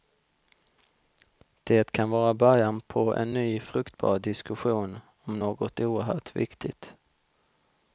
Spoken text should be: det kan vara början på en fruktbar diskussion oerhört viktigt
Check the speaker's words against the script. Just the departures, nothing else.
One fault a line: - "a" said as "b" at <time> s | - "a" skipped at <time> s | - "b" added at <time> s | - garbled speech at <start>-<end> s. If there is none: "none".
- "ny" added at 3.3 s
- "om något" added at 5.2 s